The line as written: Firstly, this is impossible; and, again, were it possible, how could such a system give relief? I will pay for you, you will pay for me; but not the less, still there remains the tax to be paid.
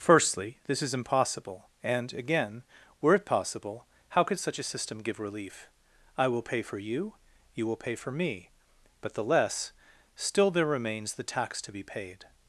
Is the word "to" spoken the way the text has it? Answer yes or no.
yes